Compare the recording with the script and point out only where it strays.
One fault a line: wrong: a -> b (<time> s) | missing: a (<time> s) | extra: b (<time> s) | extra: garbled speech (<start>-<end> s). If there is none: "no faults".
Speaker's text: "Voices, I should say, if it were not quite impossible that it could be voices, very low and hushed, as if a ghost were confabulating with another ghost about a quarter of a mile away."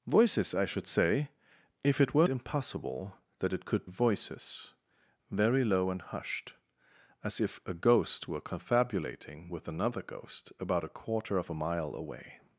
missing: not quite (2.3 s)
missing: be (3.9 s)